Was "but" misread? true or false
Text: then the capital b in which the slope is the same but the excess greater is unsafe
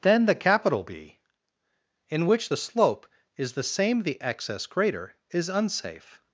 true